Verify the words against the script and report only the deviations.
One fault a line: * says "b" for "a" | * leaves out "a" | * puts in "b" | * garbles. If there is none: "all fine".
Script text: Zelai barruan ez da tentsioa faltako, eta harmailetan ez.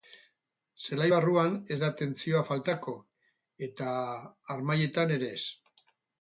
* puts in "ere"